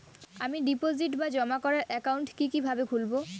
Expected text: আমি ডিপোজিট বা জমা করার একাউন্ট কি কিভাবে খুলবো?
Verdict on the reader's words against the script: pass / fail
pass